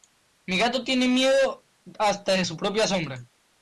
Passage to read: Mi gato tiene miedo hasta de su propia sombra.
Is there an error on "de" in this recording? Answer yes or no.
no